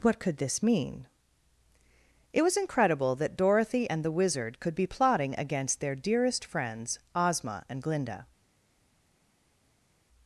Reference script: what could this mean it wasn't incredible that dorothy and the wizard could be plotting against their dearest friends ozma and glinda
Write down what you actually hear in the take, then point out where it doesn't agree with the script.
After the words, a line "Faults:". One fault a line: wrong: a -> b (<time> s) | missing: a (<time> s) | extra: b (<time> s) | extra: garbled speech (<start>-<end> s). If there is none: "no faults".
what could this mean it was incredible that dorothy and the wizard could be plotting against their dearest friends ozma and glinda
Faults:
wrong: wasn't -> was (2.4 s)